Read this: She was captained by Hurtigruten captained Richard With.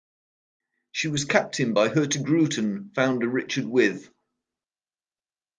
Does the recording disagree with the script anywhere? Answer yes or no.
yes